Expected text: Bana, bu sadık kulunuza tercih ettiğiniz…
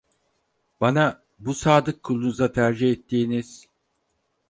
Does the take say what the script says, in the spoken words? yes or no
yes